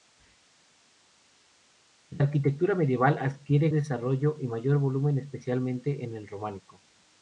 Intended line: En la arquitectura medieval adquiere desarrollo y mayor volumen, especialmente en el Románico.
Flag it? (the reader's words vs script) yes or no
no